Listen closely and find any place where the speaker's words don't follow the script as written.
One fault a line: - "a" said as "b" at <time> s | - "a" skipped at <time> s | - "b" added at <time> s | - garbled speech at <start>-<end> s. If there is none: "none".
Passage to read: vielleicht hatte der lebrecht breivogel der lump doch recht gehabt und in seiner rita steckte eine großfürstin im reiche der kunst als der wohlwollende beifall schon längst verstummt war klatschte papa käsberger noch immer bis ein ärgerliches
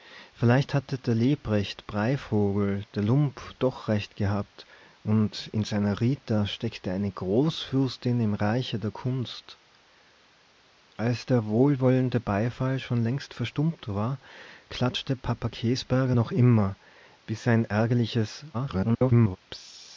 - garbled speech at 18.5-19.4 s